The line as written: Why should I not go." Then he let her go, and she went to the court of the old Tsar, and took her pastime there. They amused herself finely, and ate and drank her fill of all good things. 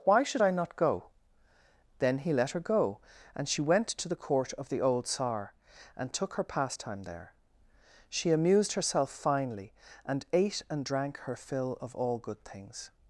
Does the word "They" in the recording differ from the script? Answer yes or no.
yes